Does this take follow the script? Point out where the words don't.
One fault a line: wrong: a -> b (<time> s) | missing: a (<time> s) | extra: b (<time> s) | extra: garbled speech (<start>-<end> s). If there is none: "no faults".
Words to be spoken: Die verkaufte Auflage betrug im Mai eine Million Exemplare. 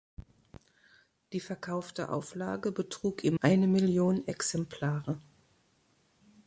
missing: Mai (3.4 s)